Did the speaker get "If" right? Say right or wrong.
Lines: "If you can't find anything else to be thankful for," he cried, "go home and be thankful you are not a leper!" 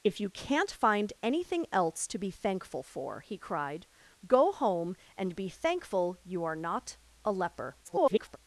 right